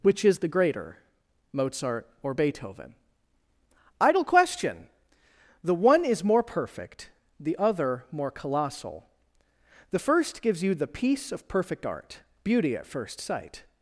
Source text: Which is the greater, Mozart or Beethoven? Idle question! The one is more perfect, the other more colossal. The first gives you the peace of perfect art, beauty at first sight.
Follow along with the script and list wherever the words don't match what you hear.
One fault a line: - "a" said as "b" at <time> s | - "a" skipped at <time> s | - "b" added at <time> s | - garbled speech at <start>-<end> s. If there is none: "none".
none